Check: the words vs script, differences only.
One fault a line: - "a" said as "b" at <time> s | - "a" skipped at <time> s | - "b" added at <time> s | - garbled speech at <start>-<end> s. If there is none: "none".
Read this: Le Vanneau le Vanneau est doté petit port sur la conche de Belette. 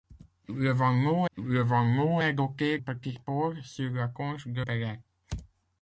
none